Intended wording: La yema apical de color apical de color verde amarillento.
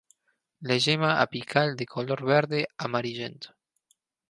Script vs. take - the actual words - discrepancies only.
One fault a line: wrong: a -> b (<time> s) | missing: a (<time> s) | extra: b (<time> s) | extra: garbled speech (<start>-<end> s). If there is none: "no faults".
missing: apical de color (2.2 s)